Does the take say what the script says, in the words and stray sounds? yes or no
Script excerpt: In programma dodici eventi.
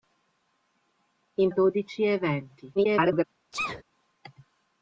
no